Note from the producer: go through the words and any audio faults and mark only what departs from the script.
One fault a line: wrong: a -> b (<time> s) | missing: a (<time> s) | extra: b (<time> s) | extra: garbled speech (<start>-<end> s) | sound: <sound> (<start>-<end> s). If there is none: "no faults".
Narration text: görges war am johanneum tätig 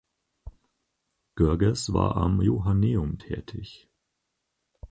no faults